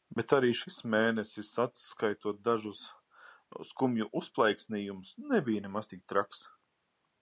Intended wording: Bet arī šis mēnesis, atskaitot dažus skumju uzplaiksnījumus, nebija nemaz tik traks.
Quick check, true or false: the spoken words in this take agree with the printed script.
true